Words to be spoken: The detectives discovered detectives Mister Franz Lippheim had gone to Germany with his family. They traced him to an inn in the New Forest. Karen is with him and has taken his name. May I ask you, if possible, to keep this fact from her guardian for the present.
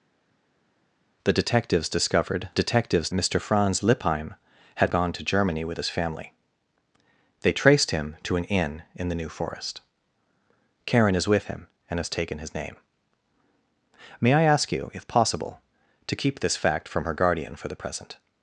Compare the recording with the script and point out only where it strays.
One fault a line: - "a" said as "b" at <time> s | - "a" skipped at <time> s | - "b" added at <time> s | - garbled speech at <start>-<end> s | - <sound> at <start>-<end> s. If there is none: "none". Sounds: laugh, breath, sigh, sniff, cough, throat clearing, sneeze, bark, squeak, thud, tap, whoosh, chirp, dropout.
none